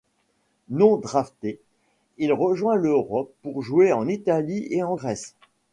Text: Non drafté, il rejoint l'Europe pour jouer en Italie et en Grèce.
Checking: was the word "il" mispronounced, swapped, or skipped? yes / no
no